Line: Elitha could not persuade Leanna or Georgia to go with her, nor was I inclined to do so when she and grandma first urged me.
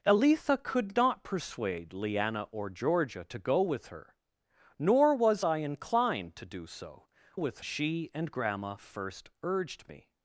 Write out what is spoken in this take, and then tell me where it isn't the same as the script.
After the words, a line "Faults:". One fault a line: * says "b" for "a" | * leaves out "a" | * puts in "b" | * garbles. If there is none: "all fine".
Elitha could not persuade Leanna or Georgia to go with her, nor was I inclined to do so with she and grandma first urged me.
Faults:
* says "with" for "when"